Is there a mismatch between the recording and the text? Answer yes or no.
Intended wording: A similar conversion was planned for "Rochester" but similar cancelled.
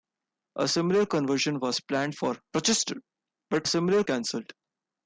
no